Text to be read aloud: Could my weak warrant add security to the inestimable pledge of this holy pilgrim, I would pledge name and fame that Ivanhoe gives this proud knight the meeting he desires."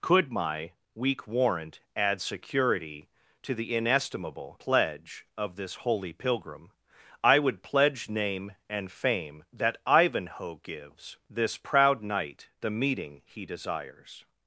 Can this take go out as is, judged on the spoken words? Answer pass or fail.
pass